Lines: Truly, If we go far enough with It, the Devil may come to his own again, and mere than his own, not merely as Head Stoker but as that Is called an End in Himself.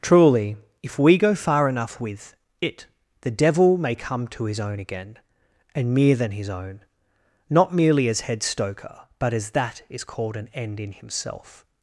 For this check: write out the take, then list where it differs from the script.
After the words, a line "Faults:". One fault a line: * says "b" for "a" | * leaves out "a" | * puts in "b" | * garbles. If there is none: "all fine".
Truly, If we go far enough with It, the Devil may come to his own again, and mere than his own, not merely as Head Stoker but as that Is called an End in Himself.
Faults:
all fine